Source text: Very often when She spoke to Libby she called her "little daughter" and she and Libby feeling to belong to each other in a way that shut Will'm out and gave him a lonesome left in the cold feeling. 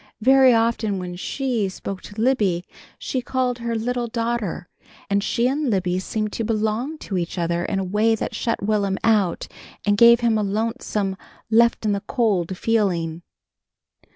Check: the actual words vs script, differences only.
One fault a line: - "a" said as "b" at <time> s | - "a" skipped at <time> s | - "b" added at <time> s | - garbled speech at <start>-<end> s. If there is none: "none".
- "feeling" said as "seemed" at 6.0 s